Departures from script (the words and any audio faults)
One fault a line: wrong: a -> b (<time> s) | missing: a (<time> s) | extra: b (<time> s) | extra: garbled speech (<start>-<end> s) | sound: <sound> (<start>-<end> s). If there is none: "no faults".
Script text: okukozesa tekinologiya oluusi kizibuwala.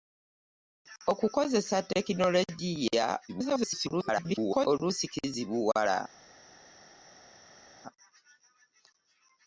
extra: garbled speech (3.3-4.7 s)